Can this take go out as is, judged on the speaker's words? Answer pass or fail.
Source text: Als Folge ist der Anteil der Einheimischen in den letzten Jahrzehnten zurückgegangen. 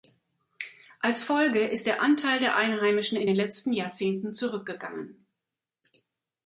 pass